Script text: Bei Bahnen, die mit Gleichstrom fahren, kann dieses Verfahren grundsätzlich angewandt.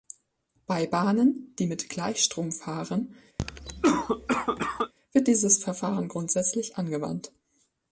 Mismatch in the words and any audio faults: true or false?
true